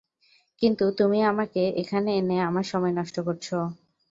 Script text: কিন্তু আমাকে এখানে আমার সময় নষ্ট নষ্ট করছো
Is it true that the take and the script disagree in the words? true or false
true